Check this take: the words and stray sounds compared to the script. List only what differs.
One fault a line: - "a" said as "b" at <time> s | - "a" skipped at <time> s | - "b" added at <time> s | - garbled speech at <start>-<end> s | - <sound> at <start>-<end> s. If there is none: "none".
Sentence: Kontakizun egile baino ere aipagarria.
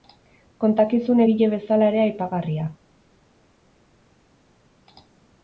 - "baino" said as "bezala" at 1.6 s